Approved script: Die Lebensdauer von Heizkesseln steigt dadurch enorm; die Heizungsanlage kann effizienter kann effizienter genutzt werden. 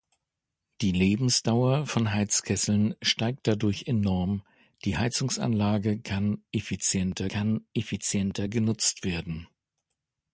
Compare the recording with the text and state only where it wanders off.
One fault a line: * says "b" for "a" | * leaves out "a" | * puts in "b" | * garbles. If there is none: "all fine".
all fine